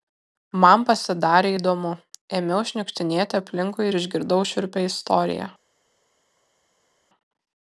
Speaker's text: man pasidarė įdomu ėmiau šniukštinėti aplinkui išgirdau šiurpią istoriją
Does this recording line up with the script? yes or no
no